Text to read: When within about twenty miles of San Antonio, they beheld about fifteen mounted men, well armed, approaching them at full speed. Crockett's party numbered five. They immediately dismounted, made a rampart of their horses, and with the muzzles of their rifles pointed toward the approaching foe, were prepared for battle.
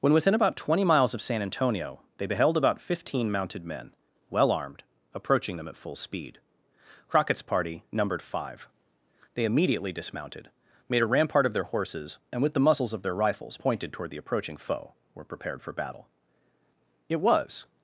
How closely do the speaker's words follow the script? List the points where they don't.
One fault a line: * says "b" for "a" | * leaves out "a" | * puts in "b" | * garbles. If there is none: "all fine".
* puts in "It was"